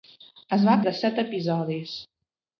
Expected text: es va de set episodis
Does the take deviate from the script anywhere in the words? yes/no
no